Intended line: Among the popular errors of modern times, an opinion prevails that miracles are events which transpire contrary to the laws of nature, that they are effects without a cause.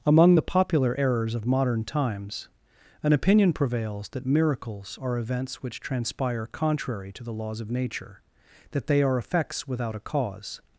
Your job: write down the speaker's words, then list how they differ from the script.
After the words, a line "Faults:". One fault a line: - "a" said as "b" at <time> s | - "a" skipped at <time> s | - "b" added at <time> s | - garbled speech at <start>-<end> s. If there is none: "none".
Among the popular errors of modern times, an opinion prevails that miracles are events which transpire contrary to the laws of nature, that they are effects without a cause.
Faults:
none